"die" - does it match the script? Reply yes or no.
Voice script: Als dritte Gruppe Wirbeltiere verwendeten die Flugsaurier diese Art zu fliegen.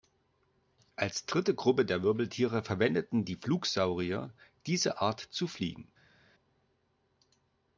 yes